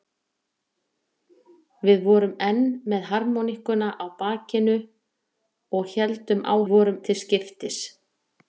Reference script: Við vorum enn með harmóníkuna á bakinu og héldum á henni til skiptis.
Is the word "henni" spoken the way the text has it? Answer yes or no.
no